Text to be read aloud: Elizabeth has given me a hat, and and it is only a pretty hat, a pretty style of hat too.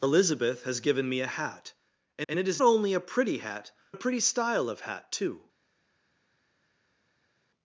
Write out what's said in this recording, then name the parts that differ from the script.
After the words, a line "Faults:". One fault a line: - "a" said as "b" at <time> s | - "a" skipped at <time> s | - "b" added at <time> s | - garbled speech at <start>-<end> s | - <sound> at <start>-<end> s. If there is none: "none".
Elizabeth has given me a hat, and and it is only a pretty hat, a pretty style of hat too.
Faults:
none